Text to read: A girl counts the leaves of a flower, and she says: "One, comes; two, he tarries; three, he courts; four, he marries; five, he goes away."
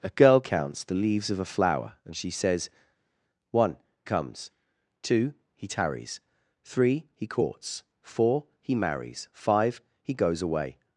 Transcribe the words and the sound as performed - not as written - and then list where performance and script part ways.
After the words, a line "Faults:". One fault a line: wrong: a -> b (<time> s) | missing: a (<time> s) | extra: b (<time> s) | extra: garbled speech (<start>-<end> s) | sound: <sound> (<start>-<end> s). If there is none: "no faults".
A girl counts the leaves of a flower, and she says: "One, comes; two, he tarries; three, he courts; four, he marries; five, he goes away."
Faults:
no faults